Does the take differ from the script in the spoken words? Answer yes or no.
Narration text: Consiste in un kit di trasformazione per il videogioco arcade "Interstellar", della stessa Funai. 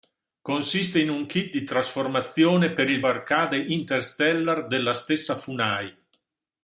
yes